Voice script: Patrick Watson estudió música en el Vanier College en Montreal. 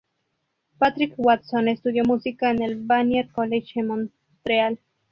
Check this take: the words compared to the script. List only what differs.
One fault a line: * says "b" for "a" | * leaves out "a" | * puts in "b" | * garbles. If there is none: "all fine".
all fine